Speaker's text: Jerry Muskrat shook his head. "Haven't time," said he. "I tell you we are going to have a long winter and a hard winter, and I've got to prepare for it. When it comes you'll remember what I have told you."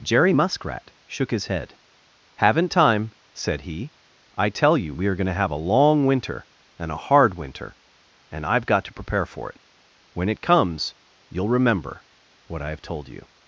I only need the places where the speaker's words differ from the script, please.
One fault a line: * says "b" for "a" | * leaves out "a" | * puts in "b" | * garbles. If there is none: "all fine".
all fine